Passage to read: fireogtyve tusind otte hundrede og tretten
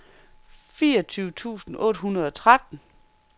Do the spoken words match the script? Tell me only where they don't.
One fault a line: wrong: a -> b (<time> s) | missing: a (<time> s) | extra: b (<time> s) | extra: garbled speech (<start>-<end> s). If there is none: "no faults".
no faults